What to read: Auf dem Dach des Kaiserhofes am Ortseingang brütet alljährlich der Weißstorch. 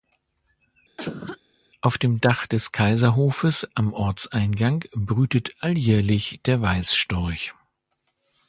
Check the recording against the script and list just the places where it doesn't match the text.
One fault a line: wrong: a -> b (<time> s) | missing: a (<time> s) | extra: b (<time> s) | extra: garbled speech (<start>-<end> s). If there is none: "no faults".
no faults